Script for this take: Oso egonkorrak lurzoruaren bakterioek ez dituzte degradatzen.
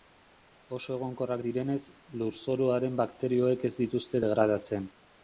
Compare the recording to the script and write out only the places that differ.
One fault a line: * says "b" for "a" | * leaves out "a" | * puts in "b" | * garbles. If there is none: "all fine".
* puts in "direnez"